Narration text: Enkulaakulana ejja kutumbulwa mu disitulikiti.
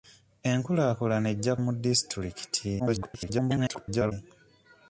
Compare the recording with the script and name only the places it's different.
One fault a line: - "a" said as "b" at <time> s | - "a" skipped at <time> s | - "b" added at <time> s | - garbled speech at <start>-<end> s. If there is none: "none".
- "kutumbulwa" skipped at 1.5 s
- garbled speech at 2.8-4.1 s